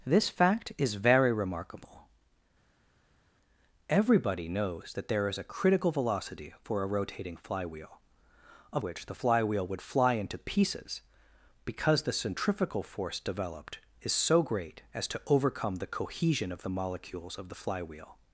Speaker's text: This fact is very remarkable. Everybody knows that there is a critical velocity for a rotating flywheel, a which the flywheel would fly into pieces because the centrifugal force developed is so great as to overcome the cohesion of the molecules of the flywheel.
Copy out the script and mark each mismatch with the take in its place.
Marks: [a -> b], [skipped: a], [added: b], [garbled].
This fact is very remarkable. Everybody knows that there is a critical velocity for a rotating flywheel, a which the flywheel would fly into pieces because the centrifugal force developed is so great as to overcome the cohesion of the molecules of the flywheel.